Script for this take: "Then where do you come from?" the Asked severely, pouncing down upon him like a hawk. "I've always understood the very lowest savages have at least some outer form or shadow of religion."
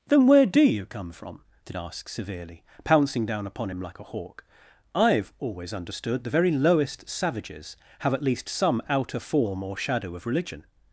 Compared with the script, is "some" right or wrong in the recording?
right